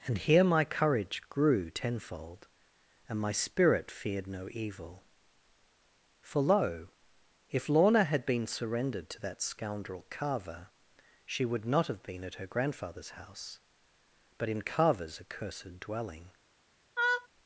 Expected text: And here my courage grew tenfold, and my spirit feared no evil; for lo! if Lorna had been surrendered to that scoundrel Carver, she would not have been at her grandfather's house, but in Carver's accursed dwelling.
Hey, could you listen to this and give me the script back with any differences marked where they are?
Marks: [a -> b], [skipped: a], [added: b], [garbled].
And here my courage grew tenfold, and my spirit feared no evil; for lo! if Lorna had been surrendered to that scoundrel Carver, she would not have been at her grandfather's house, but in Carver's accursed dwelling.